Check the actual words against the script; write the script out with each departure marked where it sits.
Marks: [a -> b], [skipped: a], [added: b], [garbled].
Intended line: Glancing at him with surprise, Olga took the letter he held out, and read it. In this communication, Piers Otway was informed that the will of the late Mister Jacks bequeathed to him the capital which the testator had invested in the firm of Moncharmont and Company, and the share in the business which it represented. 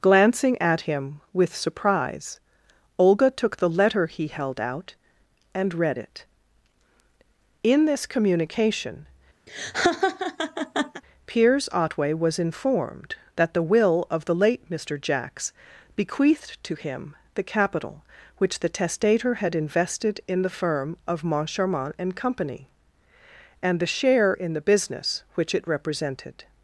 Glancing at him with surprise, Olga took the letter he held out, and read it. In this communication, Piers Otway was informed that the will of the late Mister Jacks bequeathed to him the capital which the testator had invested in the firm of Moncharmont and Company, and the share in the business which it represented.